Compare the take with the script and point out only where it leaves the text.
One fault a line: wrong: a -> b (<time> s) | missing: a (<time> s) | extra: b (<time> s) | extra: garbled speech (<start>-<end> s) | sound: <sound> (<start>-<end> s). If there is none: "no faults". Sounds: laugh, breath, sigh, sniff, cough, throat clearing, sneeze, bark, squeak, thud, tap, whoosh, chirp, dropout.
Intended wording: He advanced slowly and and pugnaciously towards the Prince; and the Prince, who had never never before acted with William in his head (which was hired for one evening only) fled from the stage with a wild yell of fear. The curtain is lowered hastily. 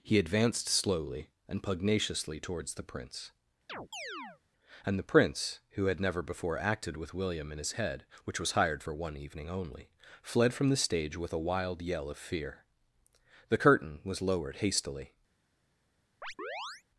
missing: and (1.6 s)
sound: chirp (3.7-4.4 s)
missing: never (6.2 s)
wrong: is -> was (14.1 s)
sound: chirp (16.2-16.8 s)